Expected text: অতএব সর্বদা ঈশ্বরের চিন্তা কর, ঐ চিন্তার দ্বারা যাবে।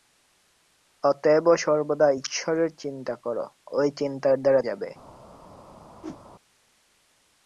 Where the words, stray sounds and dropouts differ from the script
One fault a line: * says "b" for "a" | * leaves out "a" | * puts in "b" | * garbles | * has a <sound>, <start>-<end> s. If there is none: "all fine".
* has a whoosh, 6.0-6.2 s